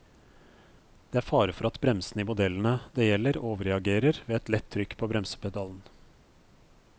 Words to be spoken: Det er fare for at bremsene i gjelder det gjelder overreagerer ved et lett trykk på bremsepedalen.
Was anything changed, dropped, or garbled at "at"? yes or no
no